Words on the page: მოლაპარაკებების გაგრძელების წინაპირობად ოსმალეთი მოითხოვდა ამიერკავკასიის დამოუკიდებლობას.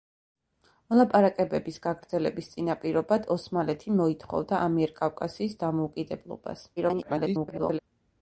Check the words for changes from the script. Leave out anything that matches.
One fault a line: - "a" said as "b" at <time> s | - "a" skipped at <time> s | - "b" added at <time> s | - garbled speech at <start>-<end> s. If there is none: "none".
- garbled speech at 6.8-7.8 s